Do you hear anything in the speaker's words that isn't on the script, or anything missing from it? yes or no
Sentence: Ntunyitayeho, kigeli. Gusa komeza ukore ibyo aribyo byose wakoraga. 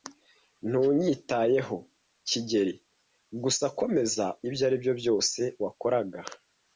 yes